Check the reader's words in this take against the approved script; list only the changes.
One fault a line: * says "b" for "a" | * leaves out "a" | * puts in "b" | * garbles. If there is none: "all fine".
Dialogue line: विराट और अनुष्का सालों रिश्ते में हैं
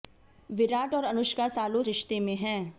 all fine